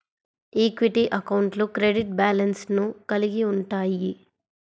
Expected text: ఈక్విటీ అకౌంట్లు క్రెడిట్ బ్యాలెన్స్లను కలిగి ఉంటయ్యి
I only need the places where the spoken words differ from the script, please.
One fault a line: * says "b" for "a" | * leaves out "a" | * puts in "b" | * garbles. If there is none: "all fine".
all fine